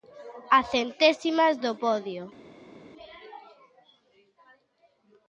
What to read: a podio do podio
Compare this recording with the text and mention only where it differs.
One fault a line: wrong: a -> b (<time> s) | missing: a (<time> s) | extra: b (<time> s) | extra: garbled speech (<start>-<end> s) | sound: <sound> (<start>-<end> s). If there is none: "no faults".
wrong: podio -> centésimas (0.6 s)